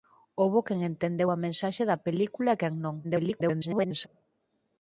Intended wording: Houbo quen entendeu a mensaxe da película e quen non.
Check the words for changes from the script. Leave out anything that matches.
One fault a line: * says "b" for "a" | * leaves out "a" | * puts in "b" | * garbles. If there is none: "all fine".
* garbles